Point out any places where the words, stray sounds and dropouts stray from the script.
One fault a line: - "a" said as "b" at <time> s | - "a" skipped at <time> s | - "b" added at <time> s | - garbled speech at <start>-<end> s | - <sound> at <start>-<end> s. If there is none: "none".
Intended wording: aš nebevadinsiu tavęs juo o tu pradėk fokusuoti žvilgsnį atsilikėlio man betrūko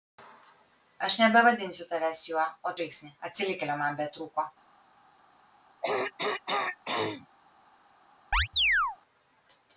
- "tu pradėk fokusuoti" skipped at 2.7 s
- throat clearing at 5.8-7.3 s
- chirp at 8.3-9.0 s